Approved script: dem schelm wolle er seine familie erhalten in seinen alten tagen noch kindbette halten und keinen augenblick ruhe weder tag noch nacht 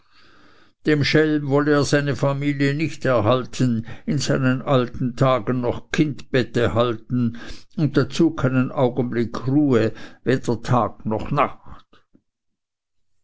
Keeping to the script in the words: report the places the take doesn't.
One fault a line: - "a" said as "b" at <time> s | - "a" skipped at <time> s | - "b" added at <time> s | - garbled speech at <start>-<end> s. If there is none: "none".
- "nicht" added at 2.7 s
- "dazu" added at 8.0 s